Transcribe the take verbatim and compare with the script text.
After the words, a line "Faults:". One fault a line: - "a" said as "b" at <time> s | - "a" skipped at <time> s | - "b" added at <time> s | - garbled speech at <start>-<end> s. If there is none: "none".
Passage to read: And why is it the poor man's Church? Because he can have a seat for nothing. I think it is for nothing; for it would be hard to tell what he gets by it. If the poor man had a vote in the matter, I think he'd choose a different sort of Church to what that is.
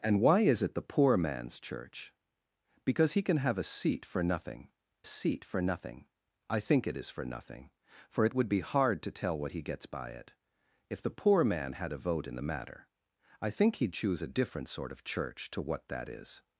And why is it the poor man's Church? Because he can have a seat for nothing seat for nothing. I think it is for nothing; for it would be hard to tell what he gets by it. If the poor man had a vote in the matter, I think he'd choose a different sort of Church to what that is.
Faults:
- "seat for nothing" added at 5.0 s